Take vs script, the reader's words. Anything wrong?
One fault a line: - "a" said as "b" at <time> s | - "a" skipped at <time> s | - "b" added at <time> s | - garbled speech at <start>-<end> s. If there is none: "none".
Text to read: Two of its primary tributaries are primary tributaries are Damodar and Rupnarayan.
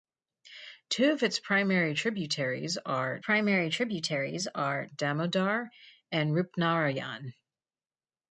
none